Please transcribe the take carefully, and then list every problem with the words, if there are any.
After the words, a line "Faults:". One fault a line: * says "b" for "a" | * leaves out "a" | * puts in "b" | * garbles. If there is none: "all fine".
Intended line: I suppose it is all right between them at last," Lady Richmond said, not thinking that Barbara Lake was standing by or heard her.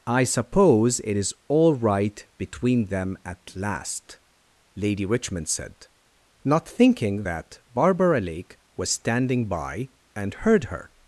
I suppose it is all right between them at last," Lady Richmond said, not thinking that Barbara Lake was standing by and heard her.
Faults:
* says "and" for "or"